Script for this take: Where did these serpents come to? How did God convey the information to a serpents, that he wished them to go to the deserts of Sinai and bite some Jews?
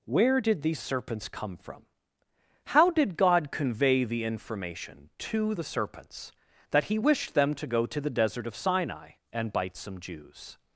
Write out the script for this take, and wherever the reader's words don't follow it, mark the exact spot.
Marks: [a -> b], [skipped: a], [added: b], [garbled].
Where did these serpents come [to? -> from] How did God convey the information to [a -> the] serpents, that he wished them to go to the [deserts -> desert] of Sinai and bite some Jews?